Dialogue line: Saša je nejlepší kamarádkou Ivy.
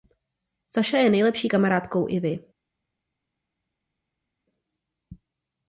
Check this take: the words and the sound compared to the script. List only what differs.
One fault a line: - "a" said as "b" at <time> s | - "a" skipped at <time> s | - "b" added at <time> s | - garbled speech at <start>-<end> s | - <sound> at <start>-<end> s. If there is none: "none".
none